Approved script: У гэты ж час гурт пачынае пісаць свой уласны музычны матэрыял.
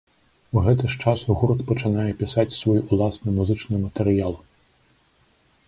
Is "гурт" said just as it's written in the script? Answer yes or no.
yes